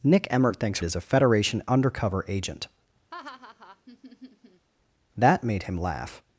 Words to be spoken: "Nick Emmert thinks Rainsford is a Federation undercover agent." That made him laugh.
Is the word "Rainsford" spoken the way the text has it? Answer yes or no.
no